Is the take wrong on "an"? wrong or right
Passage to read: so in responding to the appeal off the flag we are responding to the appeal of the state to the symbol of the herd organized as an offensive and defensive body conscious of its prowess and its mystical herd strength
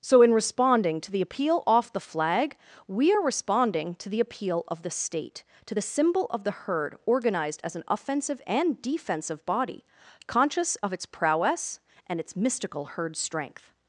right